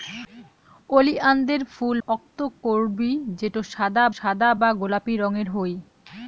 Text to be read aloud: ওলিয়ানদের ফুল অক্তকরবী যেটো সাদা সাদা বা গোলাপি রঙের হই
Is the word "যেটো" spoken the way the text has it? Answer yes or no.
yes